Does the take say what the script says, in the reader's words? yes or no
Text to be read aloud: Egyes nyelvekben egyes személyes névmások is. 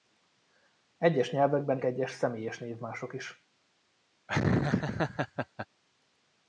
yes